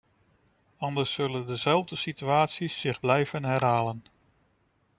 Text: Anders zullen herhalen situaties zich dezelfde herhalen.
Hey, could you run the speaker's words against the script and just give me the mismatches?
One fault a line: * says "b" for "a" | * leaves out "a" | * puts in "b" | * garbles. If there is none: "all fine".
* says "dezelfde" for "herhalen"
* says "blijven" for "dezelfde"